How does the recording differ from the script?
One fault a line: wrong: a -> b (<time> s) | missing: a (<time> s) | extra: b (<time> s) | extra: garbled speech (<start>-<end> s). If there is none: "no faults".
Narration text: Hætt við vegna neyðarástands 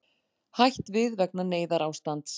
no faults